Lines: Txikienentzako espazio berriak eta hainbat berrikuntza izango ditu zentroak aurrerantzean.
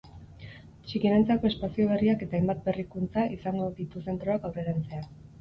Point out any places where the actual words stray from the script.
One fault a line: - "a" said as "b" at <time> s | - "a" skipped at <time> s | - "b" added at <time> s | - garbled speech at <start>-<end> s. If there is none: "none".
none